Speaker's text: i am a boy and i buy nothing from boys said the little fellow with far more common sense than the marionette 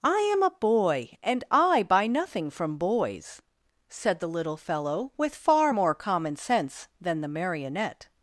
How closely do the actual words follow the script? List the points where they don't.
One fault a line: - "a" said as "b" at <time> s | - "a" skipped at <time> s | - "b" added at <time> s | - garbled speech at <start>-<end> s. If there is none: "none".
none